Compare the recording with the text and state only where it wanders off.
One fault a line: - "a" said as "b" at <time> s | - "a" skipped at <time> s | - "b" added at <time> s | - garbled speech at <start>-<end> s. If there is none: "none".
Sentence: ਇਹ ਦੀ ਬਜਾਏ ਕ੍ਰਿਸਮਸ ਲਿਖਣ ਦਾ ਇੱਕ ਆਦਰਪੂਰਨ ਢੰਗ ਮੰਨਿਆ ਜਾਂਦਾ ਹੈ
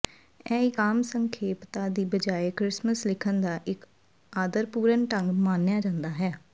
- "ਇੱਕ ਆਮ ਸੰਖੇਪਤਾ" added at 0.6 s